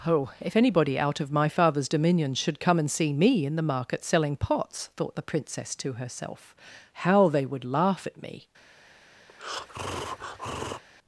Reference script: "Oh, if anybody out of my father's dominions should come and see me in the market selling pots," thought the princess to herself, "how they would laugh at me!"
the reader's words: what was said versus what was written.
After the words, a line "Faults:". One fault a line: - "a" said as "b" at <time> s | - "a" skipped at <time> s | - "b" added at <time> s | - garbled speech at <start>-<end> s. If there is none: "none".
"Oh, if anybody out of my father's dominions should come and see me in the market selling pots," thought the princess to herself, "how they would laugh at me!"
Faults:
none